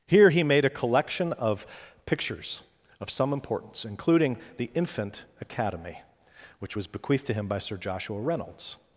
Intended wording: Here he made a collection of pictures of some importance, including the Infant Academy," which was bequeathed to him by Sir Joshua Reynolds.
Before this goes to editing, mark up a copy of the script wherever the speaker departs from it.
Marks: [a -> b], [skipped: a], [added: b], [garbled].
Here he made a collection of pictures of some importance, including the Infant Academy," which was bequeathed to him by Sir Joshua Reynolds.